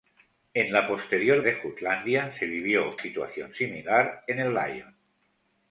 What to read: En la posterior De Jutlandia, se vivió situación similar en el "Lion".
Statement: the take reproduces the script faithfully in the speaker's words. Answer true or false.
true